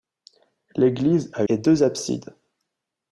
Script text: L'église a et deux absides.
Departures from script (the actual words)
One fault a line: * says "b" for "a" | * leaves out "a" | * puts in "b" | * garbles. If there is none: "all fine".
all fine